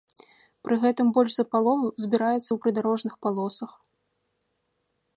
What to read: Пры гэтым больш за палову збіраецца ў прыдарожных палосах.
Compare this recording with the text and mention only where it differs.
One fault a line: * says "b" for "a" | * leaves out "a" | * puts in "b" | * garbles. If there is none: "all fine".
all fine